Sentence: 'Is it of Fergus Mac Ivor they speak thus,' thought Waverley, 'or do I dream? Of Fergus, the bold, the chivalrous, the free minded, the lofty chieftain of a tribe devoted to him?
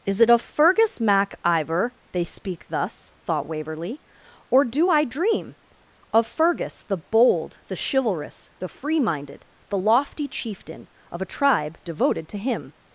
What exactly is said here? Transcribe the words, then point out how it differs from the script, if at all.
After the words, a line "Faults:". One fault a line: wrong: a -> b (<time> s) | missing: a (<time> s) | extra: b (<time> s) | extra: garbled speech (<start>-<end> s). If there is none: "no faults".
'Is it of Fergus Mac Ivor they speak thus,' thought Waverley, 'or do I dream? Of Fergus, the bold, the chivalrous, the free minded, the lofty chieftain of a tribe devoted to him?
Faults:
no faults